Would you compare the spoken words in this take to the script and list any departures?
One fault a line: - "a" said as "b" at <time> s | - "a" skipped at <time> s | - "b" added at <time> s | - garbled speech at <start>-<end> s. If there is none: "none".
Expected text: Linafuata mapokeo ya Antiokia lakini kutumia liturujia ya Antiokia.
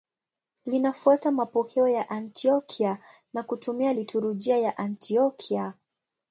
- "lakini" said as "na" at 3.3 s